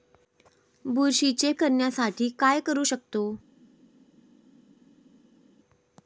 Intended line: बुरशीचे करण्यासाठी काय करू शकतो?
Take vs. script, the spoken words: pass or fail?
pass